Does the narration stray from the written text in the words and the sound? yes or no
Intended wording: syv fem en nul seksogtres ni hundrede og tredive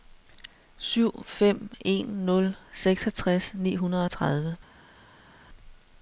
no